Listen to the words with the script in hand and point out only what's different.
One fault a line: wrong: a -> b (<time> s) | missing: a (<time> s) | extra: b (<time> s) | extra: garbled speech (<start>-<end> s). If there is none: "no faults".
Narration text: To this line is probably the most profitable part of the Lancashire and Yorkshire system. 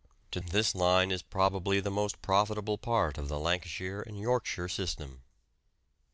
no faults